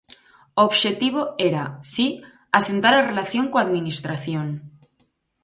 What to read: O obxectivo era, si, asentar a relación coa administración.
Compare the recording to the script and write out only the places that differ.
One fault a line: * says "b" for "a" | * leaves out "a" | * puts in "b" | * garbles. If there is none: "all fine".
all fine